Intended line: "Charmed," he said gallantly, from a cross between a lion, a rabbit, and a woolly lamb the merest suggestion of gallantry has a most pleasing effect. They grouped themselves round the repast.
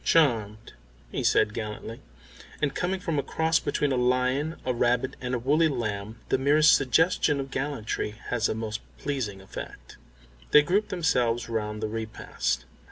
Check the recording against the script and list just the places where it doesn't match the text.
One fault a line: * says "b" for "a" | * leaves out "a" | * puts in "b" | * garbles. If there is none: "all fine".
* puts in "and coming"